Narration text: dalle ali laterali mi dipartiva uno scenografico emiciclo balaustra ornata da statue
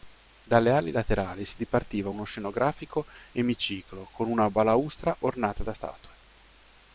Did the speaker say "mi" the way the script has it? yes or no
no